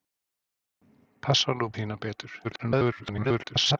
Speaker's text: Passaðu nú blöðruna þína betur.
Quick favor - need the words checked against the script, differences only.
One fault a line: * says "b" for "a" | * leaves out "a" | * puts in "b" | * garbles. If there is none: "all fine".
* leaves out "blöðruna"
* garbles